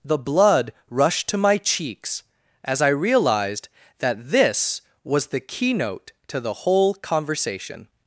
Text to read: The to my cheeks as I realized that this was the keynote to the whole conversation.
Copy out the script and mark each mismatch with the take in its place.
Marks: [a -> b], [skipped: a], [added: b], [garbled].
The [added: blood rushed] to my cheeks as I realized that this was the keynote to the whole conversation.